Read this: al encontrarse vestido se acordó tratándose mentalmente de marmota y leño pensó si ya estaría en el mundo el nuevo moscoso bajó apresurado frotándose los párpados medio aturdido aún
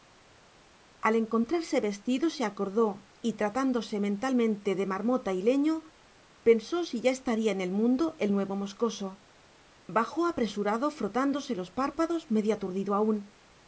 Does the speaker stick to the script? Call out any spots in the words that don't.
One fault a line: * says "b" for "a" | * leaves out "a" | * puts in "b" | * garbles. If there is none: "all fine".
* puts in "y"